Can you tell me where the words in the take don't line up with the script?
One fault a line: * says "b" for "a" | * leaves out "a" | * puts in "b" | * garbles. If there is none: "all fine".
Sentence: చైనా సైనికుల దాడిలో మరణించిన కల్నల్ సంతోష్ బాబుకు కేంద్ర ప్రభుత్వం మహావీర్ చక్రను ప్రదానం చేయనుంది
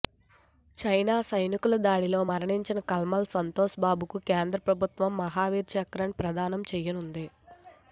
all fine